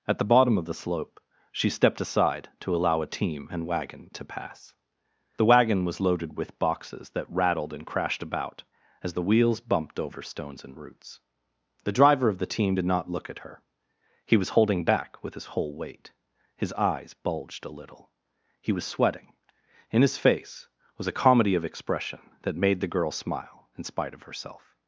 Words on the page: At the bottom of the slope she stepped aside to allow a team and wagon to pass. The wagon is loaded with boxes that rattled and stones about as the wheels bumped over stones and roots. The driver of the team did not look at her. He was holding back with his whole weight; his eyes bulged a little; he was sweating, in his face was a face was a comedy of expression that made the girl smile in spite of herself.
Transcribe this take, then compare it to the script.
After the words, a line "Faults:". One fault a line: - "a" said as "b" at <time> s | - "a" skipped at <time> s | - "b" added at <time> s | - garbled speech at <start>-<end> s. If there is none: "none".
At the bottom of the slope she stepped aside to allow a team and wagon to pass. The wagon was loaded with boxes that rattled and crashed about as the wheels bumped over stones and roots. The driver of the team did not look at her. He was holding back with his whole weight; his eyes bulged a little; he was sweating, in his face was a comedy of expression that made the girl smile in spite of herself.
Faults:
- "is" said as "was" at 5.8 s
- "stones" said as "crashed" at 7.8 s
- "face was a" skipped at 21.2 s